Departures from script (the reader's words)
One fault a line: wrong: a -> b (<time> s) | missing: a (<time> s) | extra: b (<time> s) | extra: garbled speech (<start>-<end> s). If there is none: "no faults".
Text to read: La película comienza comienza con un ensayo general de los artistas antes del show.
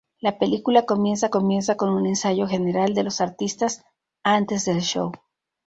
no faults